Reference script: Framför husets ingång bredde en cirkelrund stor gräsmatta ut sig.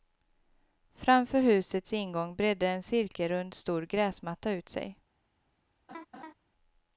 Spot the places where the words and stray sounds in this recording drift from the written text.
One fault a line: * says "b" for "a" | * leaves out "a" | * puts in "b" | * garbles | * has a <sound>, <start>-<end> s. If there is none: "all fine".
* has a laugh, 5.9-6.3 s